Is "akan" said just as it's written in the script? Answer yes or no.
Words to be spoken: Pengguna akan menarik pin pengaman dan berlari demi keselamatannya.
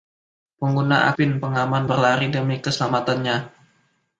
no